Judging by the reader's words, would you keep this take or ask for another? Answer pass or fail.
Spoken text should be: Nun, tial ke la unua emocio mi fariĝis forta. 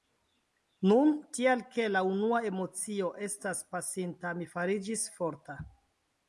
fail